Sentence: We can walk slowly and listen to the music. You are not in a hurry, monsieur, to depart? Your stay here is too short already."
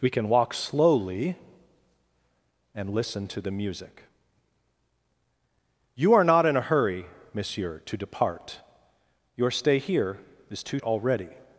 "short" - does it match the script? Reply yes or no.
no